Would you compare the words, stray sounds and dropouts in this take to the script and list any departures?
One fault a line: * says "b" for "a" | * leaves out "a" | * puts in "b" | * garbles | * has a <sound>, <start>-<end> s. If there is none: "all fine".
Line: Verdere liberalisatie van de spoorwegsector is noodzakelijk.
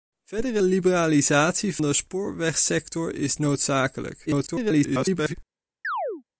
* leaves out "van"
* garbles
* has a chirp, 5.8-6.2 s